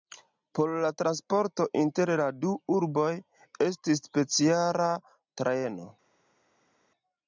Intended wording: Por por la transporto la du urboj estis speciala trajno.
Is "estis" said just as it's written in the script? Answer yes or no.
yes